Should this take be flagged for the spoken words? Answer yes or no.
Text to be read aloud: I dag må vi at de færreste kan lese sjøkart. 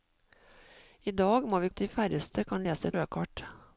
no